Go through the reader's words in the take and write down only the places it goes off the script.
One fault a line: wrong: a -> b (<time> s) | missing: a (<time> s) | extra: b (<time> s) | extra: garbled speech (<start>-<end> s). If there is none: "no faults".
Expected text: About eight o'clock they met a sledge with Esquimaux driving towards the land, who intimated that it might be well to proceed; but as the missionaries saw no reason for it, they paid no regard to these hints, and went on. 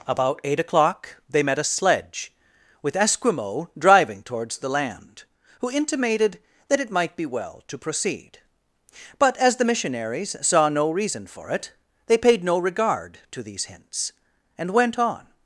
no faults